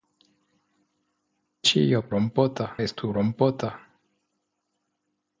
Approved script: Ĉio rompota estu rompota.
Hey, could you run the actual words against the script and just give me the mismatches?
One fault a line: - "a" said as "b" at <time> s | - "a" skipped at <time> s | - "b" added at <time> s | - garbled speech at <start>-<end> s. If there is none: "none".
none